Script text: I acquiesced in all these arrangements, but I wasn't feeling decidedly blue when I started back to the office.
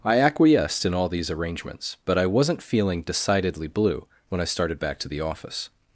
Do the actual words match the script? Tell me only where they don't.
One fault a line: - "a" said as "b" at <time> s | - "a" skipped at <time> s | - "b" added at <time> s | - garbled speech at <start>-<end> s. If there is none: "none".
none